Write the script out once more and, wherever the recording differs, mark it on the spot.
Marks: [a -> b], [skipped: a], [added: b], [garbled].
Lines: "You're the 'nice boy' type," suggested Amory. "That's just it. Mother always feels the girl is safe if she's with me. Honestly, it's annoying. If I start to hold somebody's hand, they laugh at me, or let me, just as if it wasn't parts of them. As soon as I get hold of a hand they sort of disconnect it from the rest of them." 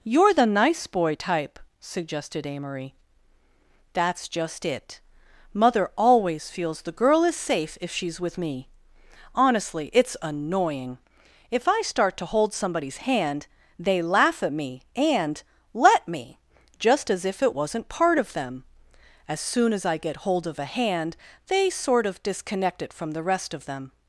"You're the 'nice boy' type," suggested Amory. "That's just it. Mother always feels the girl is safe if she's with me. Honestly, it's annoying. If I start to hold somebody's hand, they laugh at me, [or -> and] let me, just as if it wasn't [parts -> part] of them. As soon as I get hold of a hand they sort of disconnect it from the rest of them."